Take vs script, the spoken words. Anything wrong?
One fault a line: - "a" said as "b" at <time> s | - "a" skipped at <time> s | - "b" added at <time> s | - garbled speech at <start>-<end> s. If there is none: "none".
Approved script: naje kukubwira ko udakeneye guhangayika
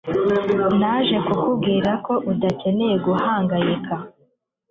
none